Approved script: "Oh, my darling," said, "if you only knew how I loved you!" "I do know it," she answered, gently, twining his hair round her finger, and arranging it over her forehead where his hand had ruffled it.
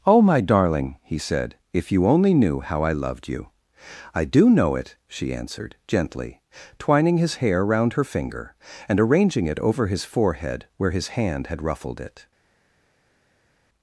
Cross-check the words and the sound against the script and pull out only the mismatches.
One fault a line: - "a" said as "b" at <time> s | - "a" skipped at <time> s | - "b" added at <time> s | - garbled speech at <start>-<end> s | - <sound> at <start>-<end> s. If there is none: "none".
- "he" added at 1.0 s
- "her" said as "his" at 9.8 s